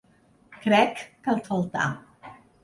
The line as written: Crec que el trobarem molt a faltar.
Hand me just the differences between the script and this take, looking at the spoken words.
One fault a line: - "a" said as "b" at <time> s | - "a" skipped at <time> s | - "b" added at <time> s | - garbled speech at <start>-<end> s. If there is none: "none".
- "trobarem molt" skipped at 1.4 s